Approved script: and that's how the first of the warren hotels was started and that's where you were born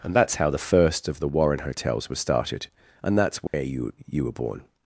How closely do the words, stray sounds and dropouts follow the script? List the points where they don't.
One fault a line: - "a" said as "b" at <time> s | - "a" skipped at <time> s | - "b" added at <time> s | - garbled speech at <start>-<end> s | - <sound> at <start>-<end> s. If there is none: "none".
- dropout at 3.5-3.5 s
- "you" added at 4.1 s